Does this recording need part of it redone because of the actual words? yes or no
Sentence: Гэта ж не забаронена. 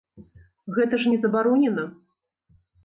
no